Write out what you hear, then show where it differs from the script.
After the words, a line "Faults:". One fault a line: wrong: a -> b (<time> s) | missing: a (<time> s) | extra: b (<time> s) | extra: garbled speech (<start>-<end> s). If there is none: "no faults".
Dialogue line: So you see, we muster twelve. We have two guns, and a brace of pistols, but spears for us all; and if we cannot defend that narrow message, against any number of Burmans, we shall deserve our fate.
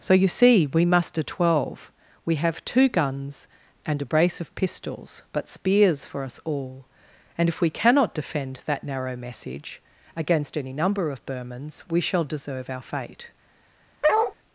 So you see, we muster twelve. We have two guns, and a brace of pistols, but spears for us all; and if we cannot defend that narrow message, against any number of Burmans, we shall deserve our fate.
Faults:
no faults